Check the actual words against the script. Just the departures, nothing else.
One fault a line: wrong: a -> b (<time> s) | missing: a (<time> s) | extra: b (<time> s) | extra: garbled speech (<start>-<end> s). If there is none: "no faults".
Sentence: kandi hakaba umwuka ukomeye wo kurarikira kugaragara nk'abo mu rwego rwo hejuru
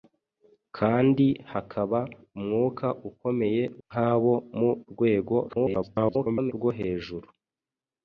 missing: wo kurarikira kugaragara (3.6 s)
extra: garbled speech (5.5-6.5 s)